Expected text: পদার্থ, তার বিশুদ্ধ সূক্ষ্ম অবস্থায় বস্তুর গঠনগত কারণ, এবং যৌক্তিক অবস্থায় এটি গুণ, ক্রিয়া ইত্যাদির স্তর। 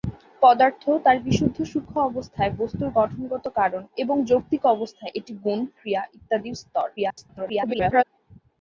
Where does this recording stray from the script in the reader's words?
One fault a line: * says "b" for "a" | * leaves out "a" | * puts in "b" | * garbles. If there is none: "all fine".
* garbles